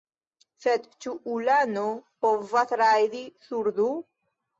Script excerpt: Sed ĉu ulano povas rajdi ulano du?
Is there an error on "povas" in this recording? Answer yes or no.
no